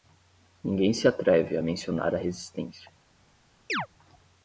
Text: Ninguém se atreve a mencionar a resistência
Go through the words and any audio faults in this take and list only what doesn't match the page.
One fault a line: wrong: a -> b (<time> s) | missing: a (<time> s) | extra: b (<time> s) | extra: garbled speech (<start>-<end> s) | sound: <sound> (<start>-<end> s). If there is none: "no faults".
sound: chirp (3.7-3.9 s)